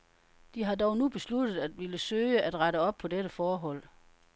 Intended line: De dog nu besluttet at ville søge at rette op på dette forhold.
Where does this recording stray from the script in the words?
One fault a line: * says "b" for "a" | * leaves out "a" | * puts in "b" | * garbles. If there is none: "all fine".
* puts in "har"